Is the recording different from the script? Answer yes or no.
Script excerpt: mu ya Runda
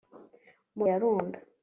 no